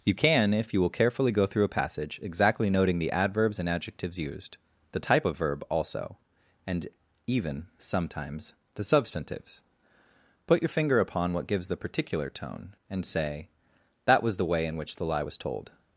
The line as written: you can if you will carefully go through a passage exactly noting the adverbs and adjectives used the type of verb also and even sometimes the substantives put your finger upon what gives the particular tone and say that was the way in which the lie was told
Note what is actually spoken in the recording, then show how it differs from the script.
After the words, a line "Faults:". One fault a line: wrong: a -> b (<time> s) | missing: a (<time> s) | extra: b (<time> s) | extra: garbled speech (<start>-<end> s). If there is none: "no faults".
you can if you will carefully go through a passage exactly noting the adverbs and adjectives used the type of verb also and even sometimes the substantives put your finger upon what gives the particular tone and say that was the way in which the lie was told
Faults:
no faults